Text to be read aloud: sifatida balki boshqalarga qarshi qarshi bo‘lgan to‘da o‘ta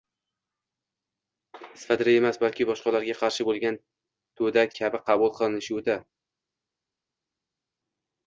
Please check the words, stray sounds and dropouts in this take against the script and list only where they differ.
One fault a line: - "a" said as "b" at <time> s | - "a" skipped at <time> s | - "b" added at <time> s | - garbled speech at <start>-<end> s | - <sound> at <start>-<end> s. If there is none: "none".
- "emas" added at 2.2 s
- "qarshi" skipped at 3.5 s
- "kabi qabul qilinishi" added at 4.8 s